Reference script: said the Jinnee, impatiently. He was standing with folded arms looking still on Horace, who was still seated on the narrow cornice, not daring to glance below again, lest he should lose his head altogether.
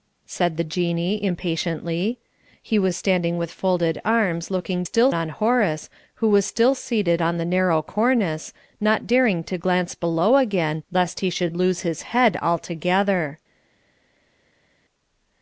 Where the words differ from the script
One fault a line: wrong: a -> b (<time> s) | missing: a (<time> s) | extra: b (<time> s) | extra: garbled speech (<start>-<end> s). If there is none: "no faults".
no faults